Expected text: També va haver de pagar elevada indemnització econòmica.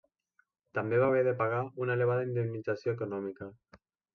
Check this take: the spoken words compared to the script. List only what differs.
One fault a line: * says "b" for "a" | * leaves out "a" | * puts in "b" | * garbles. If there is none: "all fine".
* puts in "una"